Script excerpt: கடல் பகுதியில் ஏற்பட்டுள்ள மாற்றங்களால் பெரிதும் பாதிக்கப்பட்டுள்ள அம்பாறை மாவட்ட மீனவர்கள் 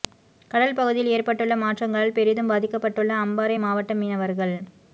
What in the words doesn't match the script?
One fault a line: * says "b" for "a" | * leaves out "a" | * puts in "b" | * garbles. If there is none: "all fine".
all fine